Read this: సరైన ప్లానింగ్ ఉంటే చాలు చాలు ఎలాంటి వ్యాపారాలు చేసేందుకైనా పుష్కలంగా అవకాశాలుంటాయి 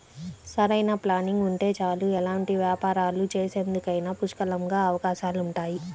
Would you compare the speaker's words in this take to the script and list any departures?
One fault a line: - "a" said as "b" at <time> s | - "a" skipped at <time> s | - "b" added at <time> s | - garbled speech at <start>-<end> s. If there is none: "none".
- "చాలు" skipped at 2.1 s